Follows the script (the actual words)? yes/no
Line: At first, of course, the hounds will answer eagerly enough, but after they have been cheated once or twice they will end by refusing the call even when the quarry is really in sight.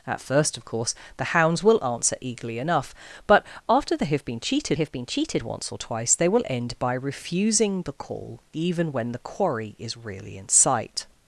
no